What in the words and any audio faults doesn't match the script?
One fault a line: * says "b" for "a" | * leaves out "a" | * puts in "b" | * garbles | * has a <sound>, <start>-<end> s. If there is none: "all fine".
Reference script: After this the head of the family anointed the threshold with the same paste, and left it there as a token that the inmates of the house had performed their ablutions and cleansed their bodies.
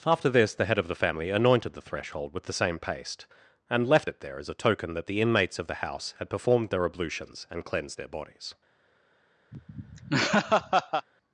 * has a laugh, 9.5-11.1 s